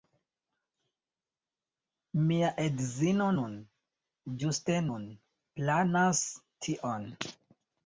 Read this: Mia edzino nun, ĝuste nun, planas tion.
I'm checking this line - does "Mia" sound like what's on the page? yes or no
yes